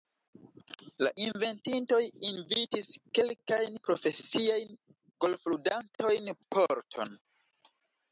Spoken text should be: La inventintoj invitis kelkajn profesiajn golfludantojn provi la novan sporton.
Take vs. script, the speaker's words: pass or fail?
fail